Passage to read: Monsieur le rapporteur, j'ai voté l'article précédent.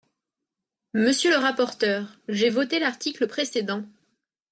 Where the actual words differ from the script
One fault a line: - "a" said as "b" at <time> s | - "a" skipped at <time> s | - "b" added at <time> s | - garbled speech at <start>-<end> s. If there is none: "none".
none